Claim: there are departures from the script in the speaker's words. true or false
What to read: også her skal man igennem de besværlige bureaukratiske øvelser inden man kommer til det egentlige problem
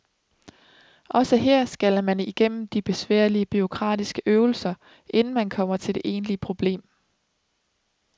false